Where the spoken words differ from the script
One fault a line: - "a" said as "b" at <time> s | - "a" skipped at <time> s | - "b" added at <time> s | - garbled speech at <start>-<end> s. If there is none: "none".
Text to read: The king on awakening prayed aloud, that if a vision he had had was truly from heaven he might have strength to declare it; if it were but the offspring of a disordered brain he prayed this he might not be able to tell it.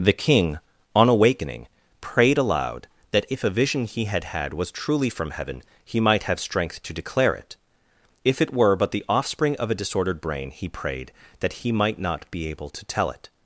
- "this" said as "that" at 11.4 s